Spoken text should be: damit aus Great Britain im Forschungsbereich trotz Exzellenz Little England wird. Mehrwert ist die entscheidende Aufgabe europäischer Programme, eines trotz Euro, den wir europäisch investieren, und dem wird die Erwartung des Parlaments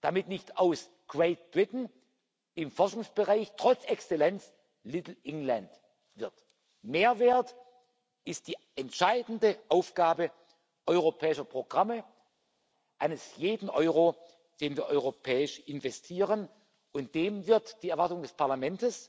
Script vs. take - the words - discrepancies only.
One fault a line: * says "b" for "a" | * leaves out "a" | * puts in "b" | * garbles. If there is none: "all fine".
* puts in "nicht"
* says "jeden" for "trotz"